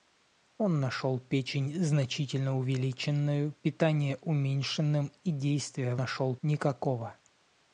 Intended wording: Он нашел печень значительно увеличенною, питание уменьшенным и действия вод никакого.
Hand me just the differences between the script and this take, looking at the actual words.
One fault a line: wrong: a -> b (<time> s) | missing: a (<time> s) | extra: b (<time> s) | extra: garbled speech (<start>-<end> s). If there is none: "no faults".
wrong: вод -> нашел (6.0 s)